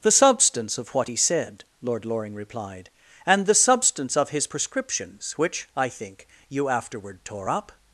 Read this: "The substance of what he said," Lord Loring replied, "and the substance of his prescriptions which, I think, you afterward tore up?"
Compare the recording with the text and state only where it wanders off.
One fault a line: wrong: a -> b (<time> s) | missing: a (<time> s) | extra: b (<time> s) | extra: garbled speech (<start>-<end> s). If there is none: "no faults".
no faults